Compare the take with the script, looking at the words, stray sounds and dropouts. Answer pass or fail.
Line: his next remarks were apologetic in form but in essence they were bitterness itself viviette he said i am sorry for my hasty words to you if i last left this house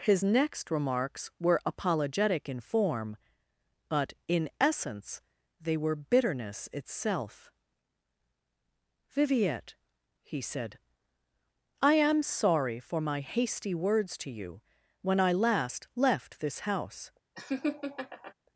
fail